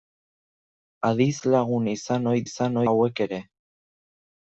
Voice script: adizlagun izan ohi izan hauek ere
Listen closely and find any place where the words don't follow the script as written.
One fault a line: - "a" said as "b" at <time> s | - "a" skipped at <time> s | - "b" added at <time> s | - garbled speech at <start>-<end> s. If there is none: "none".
none